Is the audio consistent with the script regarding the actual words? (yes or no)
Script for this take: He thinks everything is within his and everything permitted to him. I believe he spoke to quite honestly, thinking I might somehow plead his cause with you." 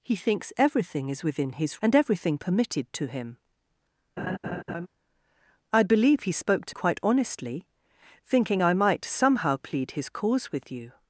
yes